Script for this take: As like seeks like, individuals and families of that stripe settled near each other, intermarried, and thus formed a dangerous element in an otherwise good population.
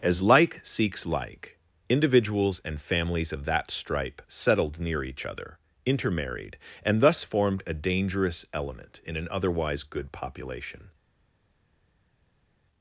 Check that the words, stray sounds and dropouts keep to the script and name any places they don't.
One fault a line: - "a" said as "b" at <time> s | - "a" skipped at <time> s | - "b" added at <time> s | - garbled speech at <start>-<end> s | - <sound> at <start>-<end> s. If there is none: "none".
none